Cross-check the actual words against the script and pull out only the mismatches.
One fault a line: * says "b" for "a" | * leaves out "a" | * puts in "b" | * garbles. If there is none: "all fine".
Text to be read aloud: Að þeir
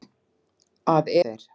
all fine